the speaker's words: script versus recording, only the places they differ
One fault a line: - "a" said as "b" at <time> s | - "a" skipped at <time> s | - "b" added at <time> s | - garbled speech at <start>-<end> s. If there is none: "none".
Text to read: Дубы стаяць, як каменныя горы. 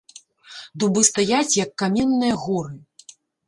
none